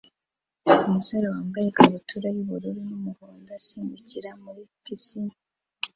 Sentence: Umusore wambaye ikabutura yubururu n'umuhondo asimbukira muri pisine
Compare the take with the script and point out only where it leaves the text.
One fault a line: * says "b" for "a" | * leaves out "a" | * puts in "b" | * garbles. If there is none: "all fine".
all fine